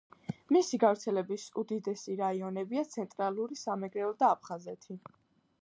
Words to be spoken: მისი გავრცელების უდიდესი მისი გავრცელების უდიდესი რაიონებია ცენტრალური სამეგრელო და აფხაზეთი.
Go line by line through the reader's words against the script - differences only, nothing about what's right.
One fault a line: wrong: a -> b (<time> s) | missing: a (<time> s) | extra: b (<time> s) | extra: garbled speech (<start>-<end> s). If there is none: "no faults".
missing: მისი გავრცელების უდიდესი (2.2 s)